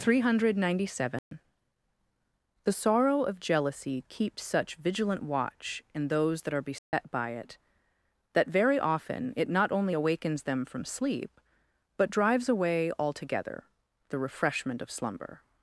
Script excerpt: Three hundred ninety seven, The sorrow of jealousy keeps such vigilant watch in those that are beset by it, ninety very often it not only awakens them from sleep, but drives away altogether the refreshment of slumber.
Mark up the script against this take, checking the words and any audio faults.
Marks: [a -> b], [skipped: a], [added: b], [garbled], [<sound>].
Three hundred ninety seven, [dropout] The sorrow of jealousy keeps such vigilant watch in those that are beset [dropout] by it, [ninety -> that] very often it not only awakens them from sleep, but drives away altogether the refreshment of slumber.